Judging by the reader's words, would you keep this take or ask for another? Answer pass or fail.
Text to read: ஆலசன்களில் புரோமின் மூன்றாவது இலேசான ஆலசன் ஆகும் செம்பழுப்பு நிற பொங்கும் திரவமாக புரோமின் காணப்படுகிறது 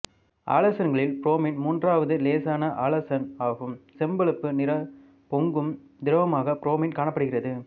pass